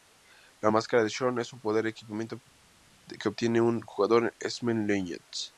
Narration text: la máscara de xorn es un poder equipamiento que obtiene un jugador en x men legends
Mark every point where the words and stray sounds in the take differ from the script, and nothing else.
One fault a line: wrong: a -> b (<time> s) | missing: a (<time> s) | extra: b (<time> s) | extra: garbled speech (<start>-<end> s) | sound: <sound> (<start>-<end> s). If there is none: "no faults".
no faults